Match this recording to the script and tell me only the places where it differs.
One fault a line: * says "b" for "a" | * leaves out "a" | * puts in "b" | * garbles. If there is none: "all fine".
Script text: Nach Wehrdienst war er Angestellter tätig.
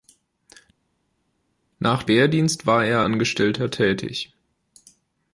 all fine